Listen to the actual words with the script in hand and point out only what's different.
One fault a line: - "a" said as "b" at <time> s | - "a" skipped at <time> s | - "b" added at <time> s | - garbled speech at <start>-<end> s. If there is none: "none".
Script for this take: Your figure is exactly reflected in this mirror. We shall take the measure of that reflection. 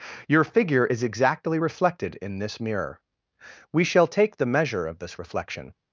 - "that" said as "this" at 5.0 s